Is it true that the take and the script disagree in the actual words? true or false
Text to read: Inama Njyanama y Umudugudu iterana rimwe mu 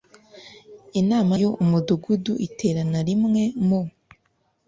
true